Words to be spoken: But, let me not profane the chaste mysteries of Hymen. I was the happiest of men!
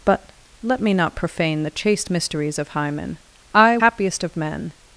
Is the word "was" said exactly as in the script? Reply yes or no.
no